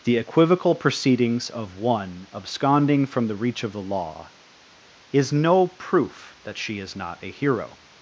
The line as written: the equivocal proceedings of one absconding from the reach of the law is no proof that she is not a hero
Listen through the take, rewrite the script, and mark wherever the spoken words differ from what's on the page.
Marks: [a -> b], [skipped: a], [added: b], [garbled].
the equivocal proceedings of one absconding from the reach of the law is no proof that she is not a hero